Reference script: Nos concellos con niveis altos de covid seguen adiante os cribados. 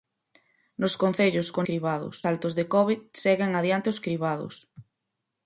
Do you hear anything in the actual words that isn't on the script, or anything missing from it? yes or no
yes